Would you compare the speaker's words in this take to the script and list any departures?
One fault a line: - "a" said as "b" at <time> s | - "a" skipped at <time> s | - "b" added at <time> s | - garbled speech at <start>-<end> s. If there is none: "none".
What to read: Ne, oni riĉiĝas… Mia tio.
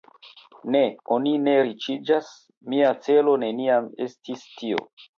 - "ne" added at 1.4 s
- "celo neniam estis" added at 3.1 s